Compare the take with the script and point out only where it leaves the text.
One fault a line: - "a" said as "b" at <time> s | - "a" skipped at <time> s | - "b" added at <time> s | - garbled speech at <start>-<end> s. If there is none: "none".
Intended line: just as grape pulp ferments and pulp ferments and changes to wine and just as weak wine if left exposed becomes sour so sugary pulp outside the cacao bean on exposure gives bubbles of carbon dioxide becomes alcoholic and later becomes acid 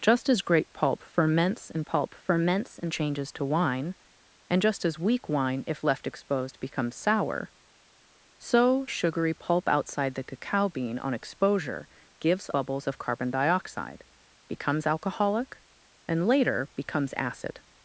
none